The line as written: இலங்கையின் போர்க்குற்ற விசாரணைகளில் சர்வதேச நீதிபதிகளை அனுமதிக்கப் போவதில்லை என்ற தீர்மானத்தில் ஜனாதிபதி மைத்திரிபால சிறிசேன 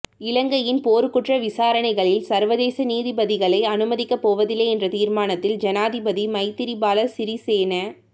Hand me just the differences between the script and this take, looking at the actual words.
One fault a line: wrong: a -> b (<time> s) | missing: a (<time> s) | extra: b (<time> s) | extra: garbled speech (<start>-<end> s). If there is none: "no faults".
no faults